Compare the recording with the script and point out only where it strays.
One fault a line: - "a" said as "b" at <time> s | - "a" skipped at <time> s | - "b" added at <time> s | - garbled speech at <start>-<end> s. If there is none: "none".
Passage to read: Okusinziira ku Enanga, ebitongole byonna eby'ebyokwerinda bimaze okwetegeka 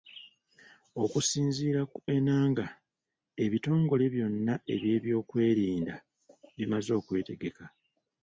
none